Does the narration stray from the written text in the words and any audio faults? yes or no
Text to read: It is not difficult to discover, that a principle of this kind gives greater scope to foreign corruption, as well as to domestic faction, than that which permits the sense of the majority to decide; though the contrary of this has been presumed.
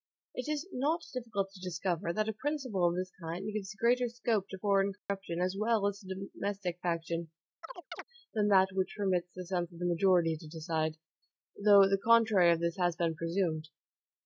yes